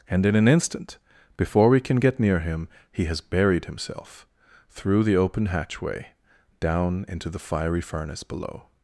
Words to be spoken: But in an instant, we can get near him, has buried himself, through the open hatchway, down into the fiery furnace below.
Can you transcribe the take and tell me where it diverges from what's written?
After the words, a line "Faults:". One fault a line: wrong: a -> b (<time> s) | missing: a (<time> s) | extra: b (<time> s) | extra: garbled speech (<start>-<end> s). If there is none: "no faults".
And in an instant, before we can get near him, he has buried himself, through the open hatchway, down into the fiery furnace below.
Faults:
wrong: But -> And (0.1 s)
extra: before (1.4 s)
extra: he (2.9 s)